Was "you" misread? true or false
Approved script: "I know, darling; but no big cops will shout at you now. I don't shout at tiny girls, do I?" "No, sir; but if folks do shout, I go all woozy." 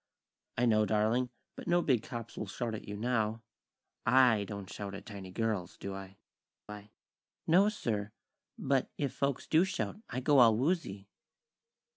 false